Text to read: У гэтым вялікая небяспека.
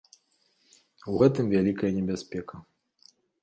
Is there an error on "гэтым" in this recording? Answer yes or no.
no